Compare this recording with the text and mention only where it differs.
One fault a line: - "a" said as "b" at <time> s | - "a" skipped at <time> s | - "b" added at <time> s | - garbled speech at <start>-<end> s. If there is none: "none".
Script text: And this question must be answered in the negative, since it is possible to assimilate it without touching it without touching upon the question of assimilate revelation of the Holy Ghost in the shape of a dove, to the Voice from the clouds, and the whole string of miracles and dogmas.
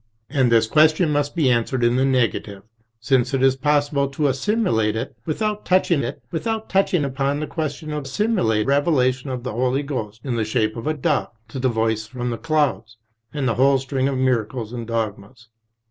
none